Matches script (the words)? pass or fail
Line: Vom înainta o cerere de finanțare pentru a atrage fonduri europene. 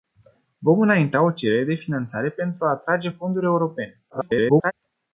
fail